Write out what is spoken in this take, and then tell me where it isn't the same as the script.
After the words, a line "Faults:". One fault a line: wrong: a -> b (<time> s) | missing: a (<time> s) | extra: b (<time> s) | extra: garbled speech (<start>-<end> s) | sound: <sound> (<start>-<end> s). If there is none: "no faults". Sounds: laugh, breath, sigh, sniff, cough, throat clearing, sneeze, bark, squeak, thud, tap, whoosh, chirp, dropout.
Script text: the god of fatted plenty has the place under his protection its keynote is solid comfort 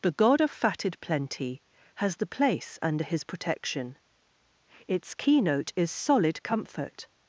the god of fatted plenty has the place under his protection its keynote is solid comfort
Faults:
no faults